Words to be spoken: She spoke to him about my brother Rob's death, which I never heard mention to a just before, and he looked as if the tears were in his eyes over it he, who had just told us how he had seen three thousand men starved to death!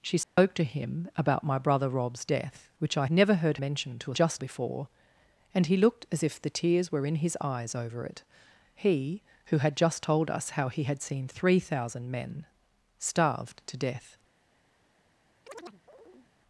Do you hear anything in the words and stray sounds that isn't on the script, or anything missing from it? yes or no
yes